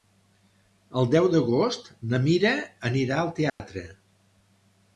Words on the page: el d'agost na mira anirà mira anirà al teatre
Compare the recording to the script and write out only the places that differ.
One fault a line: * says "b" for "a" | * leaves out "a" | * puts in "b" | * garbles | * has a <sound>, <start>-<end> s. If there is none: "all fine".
* puts in "deu"
* leaves out "mira anirà"
* has a dropout, 3.5-3.6 s